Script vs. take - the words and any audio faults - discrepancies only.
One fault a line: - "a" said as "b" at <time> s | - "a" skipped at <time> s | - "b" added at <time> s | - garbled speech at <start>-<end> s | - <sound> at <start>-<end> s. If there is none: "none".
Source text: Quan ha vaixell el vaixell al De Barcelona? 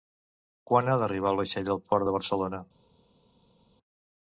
- "vaixell" said as "d'arribar" at 1.0 s
- "Port" added at 1.9 s